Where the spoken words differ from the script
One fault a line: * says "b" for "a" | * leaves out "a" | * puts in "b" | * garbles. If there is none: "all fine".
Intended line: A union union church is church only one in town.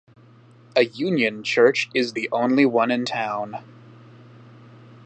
* leaves out "union"
* says "the" for "church"